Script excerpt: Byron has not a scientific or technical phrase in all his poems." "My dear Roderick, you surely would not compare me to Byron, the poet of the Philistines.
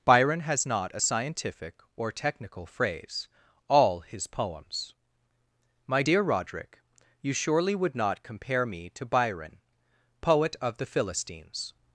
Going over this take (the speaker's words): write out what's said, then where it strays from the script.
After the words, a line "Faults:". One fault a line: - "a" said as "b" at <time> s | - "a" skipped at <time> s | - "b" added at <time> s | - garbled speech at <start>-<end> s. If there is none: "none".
Byron has not a scientific or technical phrase all his poems." "My dear Roderick, you surely would not compare me to Byron, poet of the Philistines.
Faults:
- "in" skipped at 3.3 s
- "the" skipped at 9.6 s